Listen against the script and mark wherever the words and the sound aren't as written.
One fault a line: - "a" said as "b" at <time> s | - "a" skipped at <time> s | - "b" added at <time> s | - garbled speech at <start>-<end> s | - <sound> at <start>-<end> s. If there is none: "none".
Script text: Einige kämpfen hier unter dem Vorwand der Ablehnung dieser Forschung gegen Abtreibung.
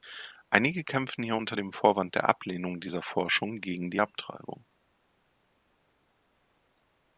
- "die" added at 3.9 s